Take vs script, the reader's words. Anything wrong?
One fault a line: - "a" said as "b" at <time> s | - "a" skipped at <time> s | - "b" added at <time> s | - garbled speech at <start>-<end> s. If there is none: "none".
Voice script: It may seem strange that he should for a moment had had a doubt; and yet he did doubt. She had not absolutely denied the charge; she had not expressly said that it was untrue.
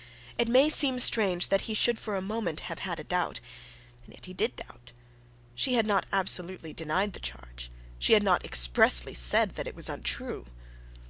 - "had" said as "have" at 2.6 s